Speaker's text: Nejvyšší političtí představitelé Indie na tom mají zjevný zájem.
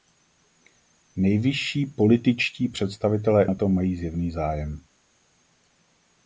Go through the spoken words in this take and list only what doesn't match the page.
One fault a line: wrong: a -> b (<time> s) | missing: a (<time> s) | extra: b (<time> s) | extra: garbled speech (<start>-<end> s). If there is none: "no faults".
missing: Indie (3.5 s)